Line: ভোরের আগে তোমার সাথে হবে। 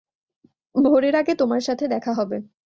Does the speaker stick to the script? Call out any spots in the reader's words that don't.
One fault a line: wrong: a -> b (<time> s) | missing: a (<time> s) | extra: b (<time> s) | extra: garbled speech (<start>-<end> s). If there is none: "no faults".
extra: দেখা (1.9 s)